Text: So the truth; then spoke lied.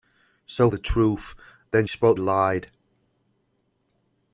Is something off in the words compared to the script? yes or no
no